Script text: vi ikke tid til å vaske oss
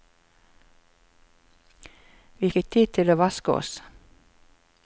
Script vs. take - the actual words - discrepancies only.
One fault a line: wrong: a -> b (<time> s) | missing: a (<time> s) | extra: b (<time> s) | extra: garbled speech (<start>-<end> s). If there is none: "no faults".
no faults